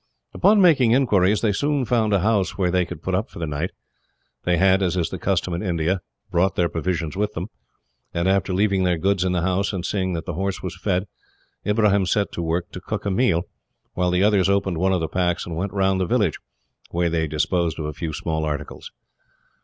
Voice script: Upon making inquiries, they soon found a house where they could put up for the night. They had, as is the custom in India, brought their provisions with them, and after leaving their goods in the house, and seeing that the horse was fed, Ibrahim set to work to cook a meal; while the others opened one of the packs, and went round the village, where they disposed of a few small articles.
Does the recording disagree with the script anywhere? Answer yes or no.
no